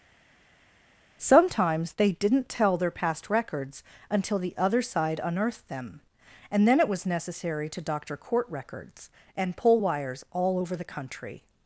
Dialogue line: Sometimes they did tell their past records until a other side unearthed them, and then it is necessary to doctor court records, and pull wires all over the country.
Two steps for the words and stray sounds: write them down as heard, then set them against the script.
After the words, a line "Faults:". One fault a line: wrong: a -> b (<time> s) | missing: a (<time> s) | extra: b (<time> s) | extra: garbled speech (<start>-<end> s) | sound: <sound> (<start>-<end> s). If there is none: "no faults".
Sometimes they didn't tell their past records until the other side unearthed them, and then it was necessary to doctor court records, and pull wires all over the country.
Faults:
wrong: did -> didn't (2.1 s)
wrong: a -> the (4.4 s)
wrong: is -> was (6.9 s)